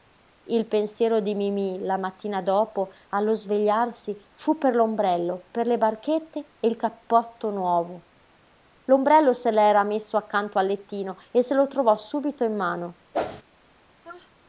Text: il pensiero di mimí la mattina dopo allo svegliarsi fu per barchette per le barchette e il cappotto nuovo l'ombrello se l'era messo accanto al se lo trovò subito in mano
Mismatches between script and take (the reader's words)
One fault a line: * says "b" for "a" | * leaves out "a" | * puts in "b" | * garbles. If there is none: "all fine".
* says "l'ombrello" for "barchette"
* puts in "lettino e"